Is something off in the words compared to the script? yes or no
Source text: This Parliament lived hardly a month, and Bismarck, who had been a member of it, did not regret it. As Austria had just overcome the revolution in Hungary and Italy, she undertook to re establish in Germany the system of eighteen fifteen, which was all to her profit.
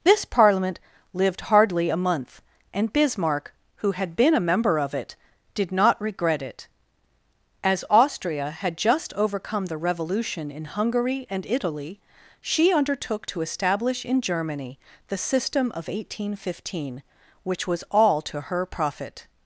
yes